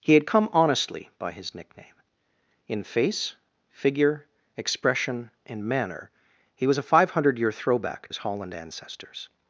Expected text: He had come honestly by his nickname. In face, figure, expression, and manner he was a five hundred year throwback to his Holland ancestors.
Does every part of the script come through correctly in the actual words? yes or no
no